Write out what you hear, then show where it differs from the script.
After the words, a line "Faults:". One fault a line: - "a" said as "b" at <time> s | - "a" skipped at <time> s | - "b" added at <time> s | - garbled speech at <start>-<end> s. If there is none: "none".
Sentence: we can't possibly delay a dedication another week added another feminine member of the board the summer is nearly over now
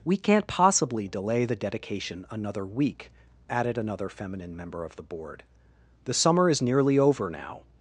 we can't possibly delay the dedication another week added another feminine member of the board the summer is nearly over now
Faults:
- "a" said as "the" at 1.4 s